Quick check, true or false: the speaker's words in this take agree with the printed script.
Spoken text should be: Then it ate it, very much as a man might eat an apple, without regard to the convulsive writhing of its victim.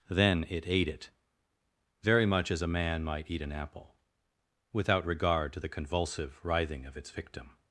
true